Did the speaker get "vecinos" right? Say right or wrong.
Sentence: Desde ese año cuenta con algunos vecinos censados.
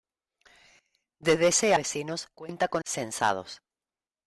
wrong